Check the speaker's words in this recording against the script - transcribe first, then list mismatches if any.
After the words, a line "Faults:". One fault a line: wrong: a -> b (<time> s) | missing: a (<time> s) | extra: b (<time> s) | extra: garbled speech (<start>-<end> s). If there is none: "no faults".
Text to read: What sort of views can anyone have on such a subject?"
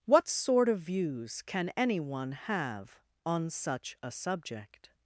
What sort of views can anyone have on such a subject?"
Faults:
no faults